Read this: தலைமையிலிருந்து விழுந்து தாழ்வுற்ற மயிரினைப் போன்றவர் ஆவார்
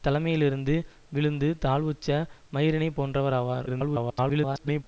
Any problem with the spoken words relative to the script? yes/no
yes